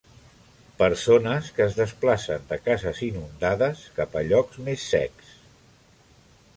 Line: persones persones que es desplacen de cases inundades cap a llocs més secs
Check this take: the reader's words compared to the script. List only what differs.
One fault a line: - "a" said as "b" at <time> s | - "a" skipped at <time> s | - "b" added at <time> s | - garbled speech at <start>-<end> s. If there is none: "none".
- "persones" skipped at 1.5 s